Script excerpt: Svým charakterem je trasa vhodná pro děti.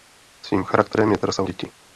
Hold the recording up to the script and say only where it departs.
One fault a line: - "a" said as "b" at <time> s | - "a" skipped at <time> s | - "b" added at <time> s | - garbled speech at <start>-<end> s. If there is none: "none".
- "vhodná pro" skipped at 1.4 s